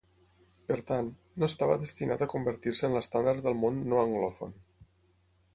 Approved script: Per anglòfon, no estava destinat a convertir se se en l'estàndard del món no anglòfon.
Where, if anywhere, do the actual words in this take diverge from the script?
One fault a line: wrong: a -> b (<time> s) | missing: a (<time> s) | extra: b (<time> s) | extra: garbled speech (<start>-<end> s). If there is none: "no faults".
wrong: anglòfon -> tant (0.9 s)
missing: se (2.9 s)